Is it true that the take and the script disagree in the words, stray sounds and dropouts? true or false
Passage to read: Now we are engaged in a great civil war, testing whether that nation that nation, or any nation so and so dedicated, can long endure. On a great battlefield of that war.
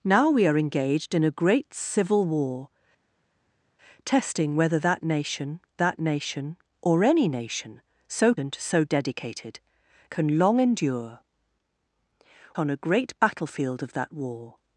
false